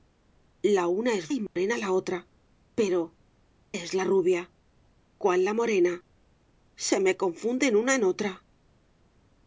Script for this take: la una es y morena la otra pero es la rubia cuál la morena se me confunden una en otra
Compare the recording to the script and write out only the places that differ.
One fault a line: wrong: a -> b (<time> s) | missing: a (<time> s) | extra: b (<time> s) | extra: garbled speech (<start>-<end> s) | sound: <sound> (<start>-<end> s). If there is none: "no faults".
sound: dropout (1.5-1.6 s)